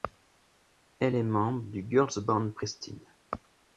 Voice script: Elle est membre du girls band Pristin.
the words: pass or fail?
pass